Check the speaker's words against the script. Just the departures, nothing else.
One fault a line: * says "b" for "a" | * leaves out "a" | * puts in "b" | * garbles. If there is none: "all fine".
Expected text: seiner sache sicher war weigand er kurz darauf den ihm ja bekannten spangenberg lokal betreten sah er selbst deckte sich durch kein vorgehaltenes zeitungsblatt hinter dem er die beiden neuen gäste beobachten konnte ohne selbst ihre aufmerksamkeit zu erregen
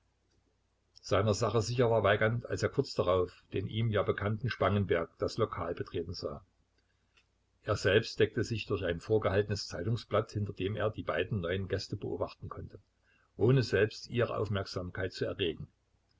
* puts in "als"
* puts in "das"
* says "ein" for "kein"